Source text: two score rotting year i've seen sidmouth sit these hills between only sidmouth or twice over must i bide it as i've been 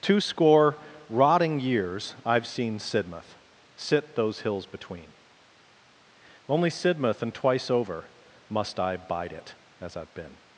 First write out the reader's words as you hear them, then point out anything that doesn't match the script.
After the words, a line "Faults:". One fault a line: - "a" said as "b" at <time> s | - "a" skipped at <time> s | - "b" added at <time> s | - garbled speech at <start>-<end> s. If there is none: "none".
two score rotting years i've seen sidmouth sit those hills between only sidmouth and twice over must i bide it as i've been
Faults:
- "year" said as "years" at 1.6 s
- "these" said as "those" at 4.1 s
- "or" said as "and" at 7.2 s